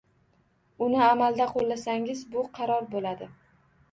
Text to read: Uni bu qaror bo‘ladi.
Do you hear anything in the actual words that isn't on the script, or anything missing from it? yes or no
yes